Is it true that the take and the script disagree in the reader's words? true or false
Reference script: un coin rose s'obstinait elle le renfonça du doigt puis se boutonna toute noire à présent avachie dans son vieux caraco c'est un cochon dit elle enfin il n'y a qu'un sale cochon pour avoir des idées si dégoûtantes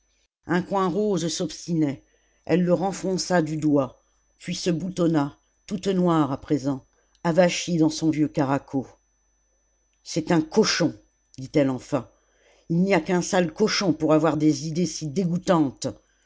false